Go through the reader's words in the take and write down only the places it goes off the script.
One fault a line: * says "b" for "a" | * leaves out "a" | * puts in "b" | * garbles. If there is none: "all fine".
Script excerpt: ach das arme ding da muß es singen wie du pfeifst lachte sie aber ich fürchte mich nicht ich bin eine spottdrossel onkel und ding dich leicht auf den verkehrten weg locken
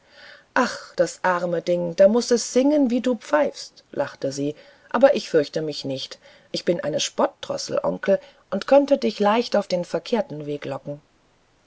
* says "könnte" for "ding"